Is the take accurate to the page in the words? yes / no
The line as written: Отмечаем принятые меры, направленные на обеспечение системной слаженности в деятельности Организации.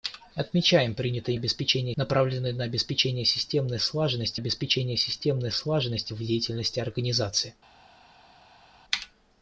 no